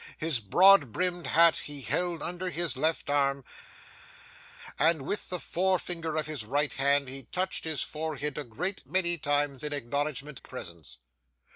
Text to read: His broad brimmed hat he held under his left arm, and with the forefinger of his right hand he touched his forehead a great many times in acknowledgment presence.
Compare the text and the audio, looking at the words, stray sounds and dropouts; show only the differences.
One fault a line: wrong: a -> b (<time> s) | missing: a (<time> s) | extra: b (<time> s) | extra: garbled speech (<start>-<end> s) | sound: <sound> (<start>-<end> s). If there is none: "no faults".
no faults